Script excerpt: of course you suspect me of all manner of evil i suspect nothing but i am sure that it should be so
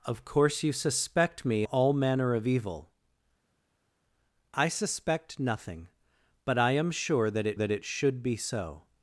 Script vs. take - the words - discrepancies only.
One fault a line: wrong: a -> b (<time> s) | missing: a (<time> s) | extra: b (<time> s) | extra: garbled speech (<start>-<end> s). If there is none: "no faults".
missing: of (1.6 s)
extra: that it (7.5 s)